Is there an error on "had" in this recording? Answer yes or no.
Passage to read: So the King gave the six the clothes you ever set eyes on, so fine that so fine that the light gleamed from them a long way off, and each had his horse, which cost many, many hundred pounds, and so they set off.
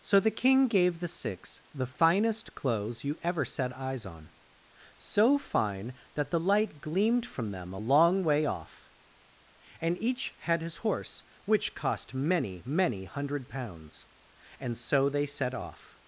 no